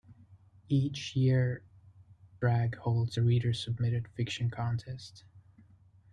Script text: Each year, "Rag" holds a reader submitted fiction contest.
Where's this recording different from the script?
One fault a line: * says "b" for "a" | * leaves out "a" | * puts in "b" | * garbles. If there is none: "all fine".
all fine